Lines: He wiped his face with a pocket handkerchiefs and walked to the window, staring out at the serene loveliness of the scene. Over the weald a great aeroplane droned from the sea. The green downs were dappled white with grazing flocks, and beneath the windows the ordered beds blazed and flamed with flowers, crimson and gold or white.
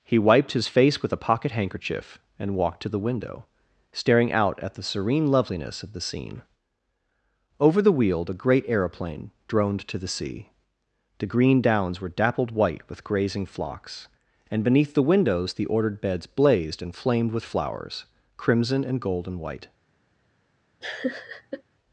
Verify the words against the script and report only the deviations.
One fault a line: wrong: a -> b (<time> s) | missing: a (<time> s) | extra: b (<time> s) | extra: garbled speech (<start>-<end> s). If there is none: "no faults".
wrong: handkerchiefs -> handkerchief (1.5 s)
wrong: from -> to (9.9 s)
wrong: or -> and (19.3 s)